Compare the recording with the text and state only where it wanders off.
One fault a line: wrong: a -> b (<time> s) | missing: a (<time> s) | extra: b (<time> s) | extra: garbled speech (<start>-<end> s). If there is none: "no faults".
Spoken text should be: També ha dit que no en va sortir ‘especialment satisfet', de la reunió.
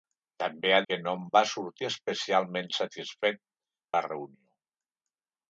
missing: dit (0.8 s)
missing: de (3.4 s)